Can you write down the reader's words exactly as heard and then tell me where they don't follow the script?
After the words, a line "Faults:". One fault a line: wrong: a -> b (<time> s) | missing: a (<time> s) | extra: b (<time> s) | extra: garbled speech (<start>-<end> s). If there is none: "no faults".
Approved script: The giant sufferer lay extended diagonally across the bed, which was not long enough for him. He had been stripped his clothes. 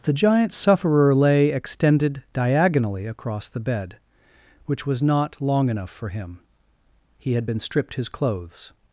The giant sufferer lay extended diagonally across the bed, which was not long enough for him. He had been stripped his clothes.
Faults:
no faults